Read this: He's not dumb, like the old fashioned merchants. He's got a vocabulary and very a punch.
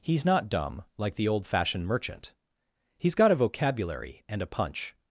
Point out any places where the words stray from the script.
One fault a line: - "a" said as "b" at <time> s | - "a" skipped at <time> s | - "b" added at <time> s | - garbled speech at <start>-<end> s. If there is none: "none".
- "merchants" said as "merchant" at 1.9 s
- "very" skipped at 4.4 s